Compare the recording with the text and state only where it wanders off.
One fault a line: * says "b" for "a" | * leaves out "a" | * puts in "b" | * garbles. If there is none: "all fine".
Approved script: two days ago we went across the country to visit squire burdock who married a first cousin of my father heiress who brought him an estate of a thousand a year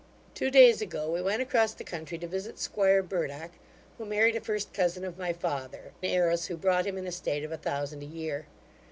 all fine